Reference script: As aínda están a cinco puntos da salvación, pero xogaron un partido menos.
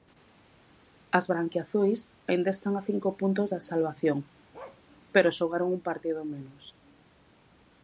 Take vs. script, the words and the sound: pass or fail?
fail